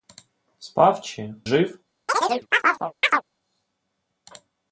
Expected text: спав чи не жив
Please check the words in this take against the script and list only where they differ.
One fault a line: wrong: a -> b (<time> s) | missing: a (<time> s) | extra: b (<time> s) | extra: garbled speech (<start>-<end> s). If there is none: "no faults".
missing: не (1.4 s)